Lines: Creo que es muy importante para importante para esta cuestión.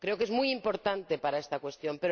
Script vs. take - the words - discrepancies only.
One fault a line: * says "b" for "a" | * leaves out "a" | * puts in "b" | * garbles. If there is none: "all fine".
* leaves out "importante para"